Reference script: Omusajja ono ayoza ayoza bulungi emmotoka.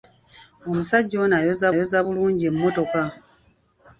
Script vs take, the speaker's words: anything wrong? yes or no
no